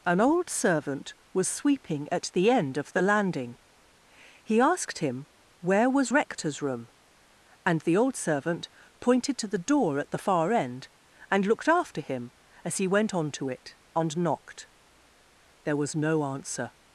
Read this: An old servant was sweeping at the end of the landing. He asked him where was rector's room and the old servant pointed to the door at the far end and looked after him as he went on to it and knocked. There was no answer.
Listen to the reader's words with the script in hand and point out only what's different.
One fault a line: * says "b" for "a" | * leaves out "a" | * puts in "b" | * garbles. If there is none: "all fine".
all fine